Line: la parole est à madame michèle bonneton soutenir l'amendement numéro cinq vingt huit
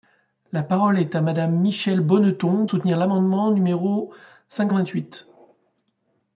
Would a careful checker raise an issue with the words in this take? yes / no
no